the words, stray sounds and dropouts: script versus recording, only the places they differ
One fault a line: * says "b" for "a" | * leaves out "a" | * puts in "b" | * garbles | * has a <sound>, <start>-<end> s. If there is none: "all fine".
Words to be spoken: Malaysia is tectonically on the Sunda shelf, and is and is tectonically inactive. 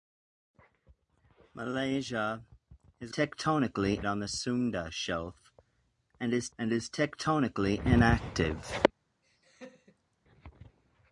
* has a laugh, 9.2-10.2 s